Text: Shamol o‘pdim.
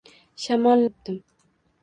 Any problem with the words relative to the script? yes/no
no